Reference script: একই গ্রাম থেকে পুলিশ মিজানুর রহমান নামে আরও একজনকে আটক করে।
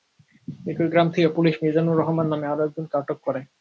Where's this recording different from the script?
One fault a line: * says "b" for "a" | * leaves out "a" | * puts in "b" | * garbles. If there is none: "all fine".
all fine